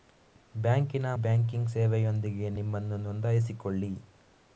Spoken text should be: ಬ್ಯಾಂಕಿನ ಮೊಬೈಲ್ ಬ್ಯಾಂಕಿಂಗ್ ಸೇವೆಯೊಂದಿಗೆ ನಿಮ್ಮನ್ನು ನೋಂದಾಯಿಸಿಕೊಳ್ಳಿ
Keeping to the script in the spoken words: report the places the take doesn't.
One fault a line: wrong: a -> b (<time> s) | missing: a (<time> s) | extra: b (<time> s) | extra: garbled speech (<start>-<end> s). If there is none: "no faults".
missing: ಮೊಬೈಲ್ (1.1 s)